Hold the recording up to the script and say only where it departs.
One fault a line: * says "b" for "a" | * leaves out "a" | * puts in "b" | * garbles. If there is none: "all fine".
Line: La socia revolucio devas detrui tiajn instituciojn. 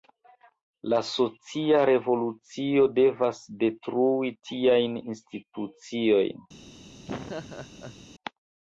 all fine